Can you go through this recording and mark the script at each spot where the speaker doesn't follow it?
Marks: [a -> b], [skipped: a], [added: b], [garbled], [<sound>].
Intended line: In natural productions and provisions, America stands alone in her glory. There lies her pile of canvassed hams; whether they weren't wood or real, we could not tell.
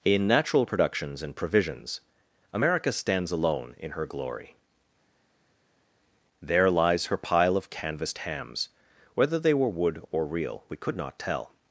In natural productions and provisions, America stands alone in her glory. There lies her pile of canvassed hams; whether they [weren't -> were] wood or real, we could not tell.